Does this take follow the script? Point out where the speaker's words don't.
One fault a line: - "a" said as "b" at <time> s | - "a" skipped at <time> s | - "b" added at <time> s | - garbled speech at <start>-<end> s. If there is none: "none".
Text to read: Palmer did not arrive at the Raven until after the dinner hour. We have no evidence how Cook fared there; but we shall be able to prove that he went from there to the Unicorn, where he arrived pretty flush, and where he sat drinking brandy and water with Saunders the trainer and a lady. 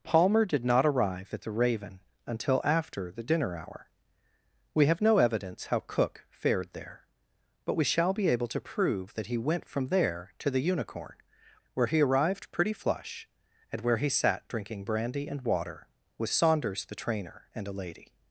none